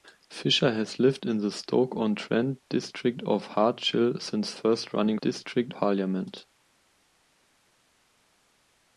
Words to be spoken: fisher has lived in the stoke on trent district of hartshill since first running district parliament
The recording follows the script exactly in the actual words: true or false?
true